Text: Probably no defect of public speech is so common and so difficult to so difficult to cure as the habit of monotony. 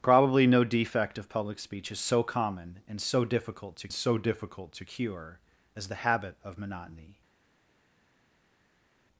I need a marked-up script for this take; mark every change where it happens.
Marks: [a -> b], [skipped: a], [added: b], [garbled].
Probably no defect of public speech is so common and so difficult to so difficult to cure as the habit of monotony.